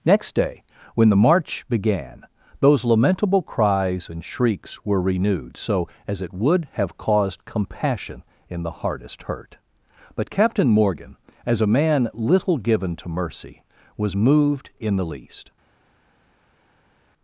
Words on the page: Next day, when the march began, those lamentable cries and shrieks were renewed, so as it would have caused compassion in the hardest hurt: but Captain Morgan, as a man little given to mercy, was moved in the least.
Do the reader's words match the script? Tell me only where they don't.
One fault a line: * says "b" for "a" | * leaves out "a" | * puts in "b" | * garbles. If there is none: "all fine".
all fine